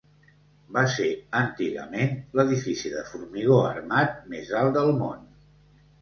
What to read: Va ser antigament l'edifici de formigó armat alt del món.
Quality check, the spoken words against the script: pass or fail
fail